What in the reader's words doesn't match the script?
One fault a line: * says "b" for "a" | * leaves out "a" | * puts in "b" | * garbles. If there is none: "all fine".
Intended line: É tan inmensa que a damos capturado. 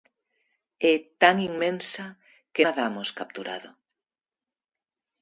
all fine